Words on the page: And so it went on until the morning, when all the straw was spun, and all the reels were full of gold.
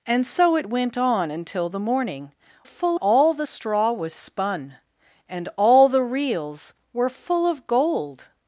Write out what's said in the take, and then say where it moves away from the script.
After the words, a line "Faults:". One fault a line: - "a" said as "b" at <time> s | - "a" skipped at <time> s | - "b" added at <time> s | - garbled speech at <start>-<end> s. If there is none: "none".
And so it went on until the morning, full all the straw was spun, and all the reels were full of gold.
Faults:
- "when" said as "full" at 2.6 s